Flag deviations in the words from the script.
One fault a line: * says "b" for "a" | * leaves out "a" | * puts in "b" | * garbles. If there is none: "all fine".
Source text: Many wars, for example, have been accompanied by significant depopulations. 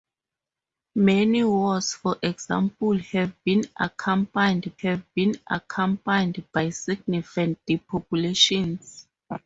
* puts in "have been accompanied"